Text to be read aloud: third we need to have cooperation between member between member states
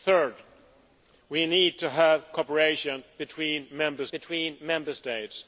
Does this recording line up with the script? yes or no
yes